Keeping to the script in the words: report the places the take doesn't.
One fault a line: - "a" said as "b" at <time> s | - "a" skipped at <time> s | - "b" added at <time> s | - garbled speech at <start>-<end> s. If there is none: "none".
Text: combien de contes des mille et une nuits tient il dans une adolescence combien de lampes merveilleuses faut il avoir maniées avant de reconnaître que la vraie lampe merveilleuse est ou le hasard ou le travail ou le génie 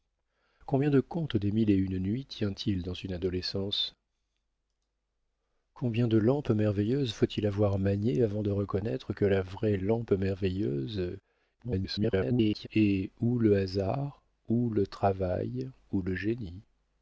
- garbled speech at 11.6-12.7 s